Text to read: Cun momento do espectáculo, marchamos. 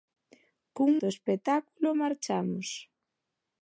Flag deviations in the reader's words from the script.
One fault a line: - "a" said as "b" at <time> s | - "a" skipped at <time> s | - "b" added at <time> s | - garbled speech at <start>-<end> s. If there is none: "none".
- "momento" skipped at 0.9 s